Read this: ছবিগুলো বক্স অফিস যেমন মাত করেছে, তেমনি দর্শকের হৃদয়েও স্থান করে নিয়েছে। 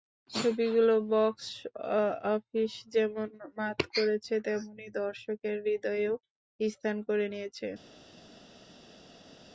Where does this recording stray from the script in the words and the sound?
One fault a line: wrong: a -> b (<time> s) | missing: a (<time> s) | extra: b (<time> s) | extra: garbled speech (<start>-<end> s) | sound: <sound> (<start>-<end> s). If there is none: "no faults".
no faults